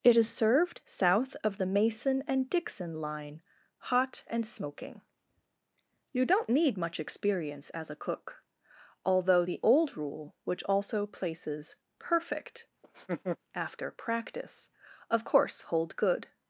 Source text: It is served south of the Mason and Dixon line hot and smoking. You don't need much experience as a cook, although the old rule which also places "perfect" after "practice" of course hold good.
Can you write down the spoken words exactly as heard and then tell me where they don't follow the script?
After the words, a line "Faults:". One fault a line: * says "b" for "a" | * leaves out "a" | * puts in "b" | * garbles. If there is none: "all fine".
It is served south of the Mason and Dixon line hot and smoking. You don't need much experience as a cook, although the old rule which also places "perfect" after "practice" of course hold good.
Faults:
all fine